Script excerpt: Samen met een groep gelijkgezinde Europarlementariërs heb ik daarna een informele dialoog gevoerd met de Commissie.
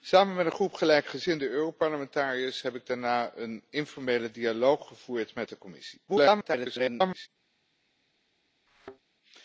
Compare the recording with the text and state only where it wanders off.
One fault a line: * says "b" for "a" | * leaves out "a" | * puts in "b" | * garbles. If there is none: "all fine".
* garbles